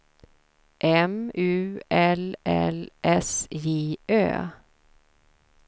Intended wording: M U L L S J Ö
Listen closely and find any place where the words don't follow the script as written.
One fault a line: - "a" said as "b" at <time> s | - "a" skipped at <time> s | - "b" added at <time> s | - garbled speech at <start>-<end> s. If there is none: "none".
none